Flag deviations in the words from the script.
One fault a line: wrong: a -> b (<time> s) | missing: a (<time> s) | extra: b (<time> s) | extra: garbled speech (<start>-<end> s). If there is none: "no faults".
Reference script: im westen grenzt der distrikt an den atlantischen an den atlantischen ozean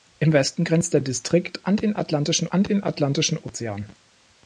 no faults